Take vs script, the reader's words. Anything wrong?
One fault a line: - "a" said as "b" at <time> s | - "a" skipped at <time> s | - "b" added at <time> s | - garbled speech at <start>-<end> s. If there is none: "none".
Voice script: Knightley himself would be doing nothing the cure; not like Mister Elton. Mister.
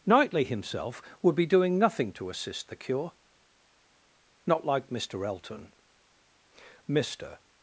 - "to assist" added at 2.1 s